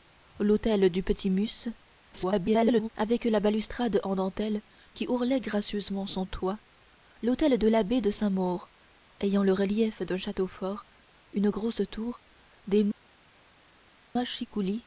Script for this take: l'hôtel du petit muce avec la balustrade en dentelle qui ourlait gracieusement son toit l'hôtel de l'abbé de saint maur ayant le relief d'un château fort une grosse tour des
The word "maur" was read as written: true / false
true